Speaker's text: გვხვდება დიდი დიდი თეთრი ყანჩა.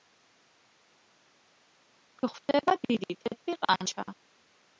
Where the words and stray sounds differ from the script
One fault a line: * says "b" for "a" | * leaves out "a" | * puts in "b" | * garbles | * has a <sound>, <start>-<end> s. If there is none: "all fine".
* leaves out "დიდი"